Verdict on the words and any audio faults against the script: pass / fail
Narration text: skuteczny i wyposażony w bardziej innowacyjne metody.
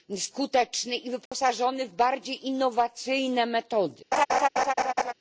fail